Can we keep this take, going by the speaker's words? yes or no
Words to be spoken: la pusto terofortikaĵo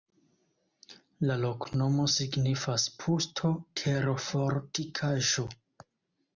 no